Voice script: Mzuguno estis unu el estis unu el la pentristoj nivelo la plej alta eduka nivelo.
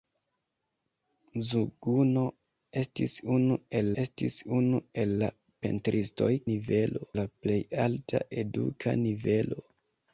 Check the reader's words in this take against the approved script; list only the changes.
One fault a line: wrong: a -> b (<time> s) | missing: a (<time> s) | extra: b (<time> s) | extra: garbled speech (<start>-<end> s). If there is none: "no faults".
no faults